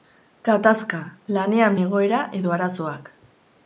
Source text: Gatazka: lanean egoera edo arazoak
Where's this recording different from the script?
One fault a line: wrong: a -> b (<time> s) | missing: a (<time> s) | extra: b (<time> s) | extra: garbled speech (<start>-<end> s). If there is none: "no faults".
no faults